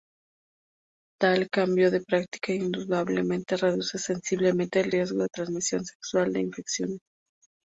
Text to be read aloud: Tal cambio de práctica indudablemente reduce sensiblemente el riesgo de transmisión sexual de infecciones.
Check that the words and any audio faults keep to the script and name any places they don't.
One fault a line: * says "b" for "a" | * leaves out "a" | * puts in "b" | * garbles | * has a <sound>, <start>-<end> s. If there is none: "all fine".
all fine